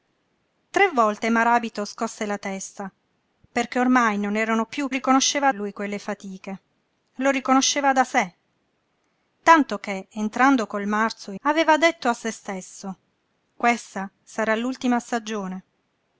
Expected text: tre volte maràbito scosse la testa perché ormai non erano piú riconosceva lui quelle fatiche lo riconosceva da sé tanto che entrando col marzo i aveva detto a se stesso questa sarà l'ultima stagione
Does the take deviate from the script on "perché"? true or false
false